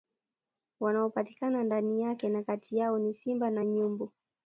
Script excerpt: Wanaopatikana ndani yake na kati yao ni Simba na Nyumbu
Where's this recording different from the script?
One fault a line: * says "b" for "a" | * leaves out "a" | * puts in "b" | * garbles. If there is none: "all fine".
all fine